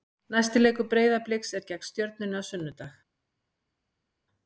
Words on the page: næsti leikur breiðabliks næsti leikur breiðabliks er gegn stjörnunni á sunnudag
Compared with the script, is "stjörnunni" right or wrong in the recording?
right